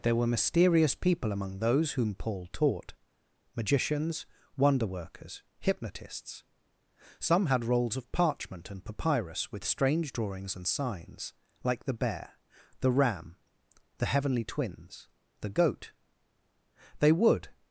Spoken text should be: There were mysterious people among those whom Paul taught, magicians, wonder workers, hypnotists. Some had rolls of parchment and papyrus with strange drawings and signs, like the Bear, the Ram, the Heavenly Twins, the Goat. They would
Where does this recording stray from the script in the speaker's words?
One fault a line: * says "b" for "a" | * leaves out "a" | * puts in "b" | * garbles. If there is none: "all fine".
all fine